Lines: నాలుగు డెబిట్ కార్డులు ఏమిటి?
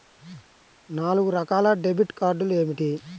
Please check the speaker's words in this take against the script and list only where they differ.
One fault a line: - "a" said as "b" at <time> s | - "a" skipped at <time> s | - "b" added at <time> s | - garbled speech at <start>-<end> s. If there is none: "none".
- "రకాల" added at 1.3 s